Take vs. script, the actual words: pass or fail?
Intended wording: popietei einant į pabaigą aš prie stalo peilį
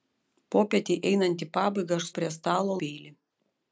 pass